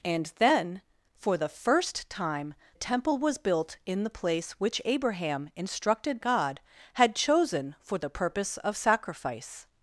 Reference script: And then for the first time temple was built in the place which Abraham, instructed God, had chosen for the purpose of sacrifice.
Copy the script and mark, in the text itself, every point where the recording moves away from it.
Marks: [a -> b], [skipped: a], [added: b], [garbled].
And then for the first time temple was built in the place which Abraham, instructed God, had chosen for the purpose of sacrifice.